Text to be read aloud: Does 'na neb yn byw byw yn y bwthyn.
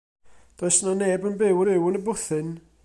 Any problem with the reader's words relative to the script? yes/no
no